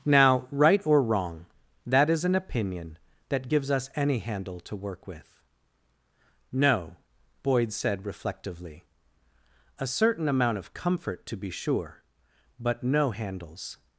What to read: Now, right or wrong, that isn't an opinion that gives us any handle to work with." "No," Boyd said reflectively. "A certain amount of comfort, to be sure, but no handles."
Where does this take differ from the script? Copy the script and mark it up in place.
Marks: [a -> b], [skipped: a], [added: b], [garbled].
Now, right or wrong, that [isn't -> is] an opinion that gives us any handle to work with." "No," Boyd said reflectively. "A certain amount of comfort, to be sure, but no handles."